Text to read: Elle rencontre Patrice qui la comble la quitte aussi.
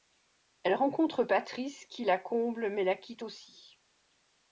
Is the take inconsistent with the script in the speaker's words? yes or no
yes